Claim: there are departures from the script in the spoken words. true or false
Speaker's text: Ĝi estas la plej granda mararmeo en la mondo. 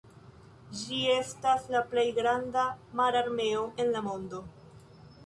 false